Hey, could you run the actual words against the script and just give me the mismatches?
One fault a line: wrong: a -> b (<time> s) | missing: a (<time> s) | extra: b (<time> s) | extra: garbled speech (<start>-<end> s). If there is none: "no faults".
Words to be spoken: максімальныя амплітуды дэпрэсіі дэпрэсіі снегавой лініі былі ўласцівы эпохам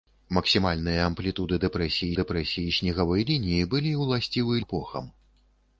no faults